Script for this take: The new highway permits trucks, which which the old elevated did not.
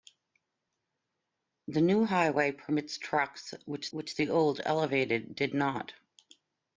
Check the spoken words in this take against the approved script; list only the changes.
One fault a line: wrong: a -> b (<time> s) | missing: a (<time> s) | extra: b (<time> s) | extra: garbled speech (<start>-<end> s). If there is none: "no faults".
no faults